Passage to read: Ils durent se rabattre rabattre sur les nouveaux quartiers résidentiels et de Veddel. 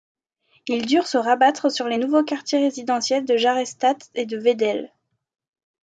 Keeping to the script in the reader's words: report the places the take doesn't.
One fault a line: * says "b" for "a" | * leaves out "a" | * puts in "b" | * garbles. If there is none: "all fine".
* leaves out "rabattre"
* puts in "de Jarrestadt"